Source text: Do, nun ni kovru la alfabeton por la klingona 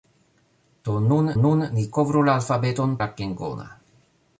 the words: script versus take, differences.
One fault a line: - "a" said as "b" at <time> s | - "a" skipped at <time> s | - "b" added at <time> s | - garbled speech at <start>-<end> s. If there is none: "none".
- "nun" added at 1.4 s
- "por" skipped at 3.0 s